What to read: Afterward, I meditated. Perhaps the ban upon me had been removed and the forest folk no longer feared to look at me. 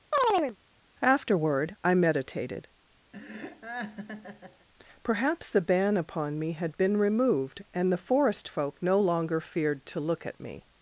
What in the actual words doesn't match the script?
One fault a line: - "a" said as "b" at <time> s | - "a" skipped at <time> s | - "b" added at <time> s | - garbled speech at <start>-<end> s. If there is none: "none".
none